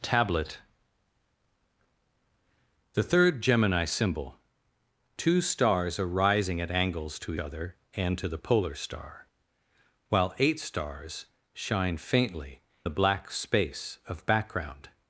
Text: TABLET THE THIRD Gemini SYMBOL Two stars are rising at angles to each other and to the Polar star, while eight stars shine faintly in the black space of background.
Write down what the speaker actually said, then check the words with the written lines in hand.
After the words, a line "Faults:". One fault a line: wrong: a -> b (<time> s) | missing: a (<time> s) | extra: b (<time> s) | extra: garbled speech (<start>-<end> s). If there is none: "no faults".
TABLET THE THIRD Gemini SYMBOL Two stars are rising at angles to other and to the Polar star, while eight stars shine faintly the black space of background.
Faults:
missing: each (7.3 s)
missing: in (12.6 s)